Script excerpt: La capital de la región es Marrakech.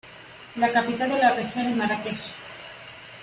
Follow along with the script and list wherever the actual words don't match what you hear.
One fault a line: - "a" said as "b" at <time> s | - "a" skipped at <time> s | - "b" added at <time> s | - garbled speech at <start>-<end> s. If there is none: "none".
none